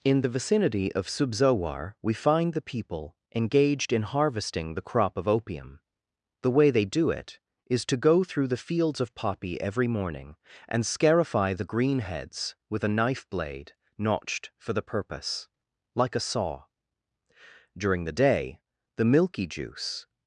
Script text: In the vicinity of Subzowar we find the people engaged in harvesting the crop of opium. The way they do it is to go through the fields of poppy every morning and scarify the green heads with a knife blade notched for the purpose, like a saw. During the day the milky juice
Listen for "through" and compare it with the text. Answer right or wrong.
right